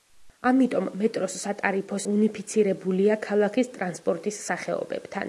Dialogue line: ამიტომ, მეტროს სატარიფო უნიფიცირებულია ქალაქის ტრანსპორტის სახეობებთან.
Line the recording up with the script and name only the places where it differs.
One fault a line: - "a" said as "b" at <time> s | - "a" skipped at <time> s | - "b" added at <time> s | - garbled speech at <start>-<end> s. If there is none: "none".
none